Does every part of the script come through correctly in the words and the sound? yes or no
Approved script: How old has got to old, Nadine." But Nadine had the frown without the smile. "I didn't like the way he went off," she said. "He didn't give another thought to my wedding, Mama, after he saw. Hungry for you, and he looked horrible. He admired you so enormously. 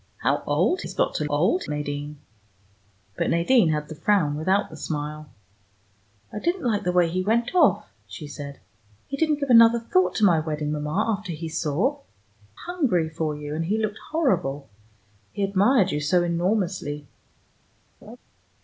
no